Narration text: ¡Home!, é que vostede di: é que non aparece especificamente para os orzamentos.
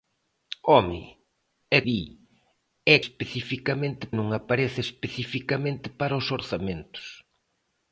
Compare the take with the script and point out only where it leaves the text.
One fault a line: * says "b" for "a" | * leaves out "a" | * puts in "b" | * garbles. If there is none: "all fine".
* leaves out "que vostede"
* says "especificamente" for "que"